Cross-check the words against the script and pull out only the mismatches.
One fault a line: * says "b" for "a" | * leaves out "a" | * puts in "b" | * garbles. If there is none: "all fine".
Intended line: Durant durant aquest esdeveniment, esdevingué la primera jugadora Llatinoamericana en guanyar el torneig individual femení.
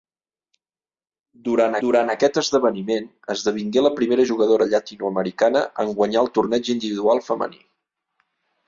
all fine